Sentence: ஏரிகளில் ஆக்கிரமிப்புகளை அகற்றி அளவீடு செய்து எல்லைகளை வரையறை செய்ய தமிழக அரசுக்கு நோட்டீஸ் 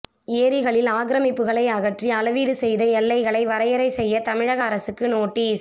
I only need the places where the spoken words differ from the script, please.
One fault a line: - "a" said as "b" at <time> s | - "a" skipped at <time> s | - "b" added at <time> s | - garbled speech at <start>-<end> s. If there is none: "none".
none